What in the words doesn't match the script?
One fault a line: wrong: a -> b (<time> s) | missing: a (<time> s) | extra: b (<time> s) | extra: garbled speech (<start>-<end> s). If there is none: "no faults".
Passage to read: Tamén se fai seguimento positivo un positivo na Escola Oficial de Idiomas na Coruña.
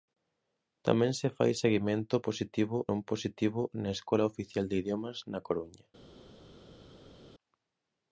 no faults